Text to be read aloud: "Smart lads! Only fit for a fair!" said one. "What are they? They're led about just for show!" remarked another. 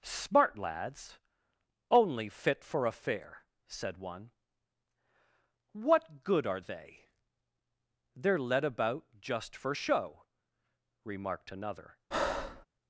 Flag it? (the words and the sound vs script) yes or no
yes